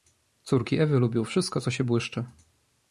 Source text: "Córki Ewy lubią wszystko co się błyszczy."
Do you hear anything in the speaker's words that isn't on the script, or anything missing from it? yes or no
no